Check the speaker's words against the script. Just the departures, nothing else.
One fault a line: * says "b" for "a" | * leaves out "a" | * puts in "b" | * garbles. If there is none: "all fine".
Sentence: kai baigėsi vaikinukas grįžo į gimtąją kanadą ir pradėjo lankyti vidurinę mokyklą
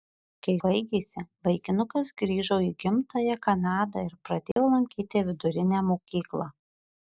all fine